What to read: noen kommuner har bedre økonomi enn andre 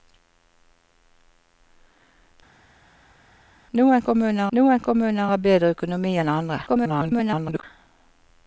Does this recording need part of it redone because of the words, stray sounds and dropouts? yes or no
yes